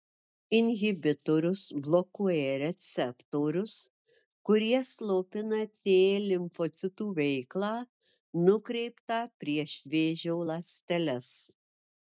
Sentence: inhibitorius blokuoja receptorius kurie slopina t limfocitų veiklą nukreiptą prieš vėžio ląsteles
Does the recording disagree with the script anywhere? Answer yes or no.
no